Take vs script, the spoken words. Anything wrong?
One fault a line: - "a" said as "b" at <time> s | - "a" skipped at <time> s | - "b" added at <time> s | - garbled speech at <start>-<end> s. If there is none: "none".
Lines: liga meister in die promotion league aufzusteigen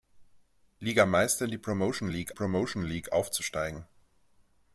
- "promotion league" added at 2.3 s